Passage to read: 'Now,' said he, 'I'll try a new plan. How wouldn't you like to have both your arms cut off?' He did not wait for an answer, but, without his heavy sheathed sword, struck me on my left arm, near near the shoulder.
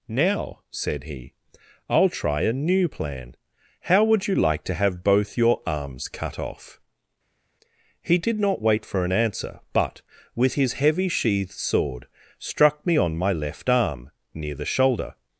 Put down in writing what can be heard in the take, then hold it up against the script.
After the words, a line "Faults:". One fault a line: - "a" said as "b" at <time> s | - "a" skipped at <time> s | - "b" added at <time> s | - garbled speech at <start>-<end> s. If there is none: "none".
'Now,' said he, 'I'll try a new plan. How would you like to have both your arms cut off?' He did not wait for an answer, but, with his heavy sheathed sword, struck me on my left arm, near the shoulder.
Faults:
- "wouldn't" said as "would" at 4.0 s
- "without" said as "with" at 10.4 s
- "near" skipped at 14.6 s